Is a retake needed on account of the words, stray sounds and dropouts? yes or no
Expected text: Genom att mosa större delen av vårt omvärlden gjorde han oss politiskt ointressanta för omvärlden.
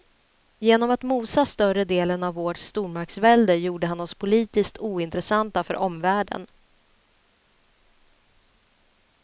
yes